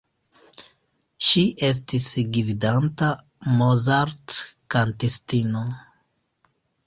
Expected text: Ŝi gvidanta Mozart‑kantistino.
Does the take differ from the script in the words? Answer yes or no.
yes